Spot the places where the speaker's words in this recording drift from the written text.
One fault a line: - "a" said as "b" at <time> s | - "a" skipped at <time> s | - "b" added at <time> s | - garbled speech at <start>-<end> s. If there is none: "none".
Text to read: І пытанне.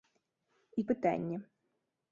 none